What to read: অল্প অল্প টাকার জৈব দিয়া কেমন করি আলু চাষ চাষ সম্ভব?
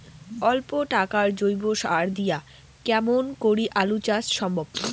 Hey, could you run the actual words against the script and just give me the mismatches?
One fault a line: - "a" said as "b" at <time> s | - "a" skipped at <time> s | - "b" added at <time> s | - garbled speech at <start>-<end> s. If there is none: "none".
- "অল্প" skipped at 0.7 s
- "সার" added at 1.8 s
- "চাষ" skipped at 4.2 s